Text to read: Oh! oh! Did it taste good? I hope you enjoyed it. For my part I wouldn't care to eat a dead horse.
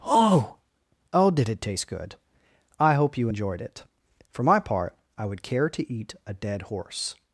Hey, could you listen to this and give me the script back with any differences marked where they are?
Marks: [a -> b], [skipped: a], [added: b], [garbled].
Oh! oh! Did it taste good? I hope you enjoyed it. For my part I [wouldn't -> would] care to eat a dead horse.